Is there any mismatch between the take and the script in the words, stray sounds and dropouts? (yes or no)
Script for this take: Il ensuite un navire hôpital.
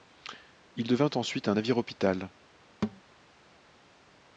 yes